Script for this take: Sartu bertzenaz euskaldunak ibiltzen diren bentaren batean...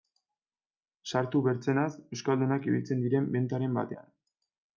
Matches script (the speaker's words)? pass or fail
pass